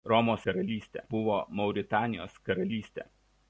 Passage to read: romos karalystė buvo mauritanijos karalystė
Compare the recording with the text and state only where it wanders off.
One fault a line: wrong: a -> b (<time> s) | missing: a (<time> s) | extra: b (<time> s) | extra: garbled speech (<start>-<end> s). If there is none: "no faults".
no faults